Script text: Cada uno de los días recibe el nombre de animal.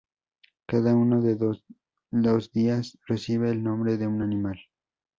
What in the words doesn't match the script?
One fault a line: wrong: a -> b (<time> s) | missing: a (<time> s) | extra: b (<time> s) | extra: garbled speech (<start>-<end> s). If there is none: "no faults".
extra: un (4.1 s)